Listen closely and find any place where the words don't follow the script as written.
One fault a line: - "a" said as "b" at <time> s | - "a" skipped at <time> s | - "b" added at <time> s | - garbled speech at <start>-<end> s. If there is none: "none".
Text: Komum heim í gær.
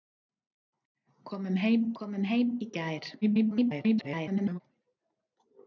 - "komum heim" added at 2.0 s
- garbled speech at 3.2-4.6 s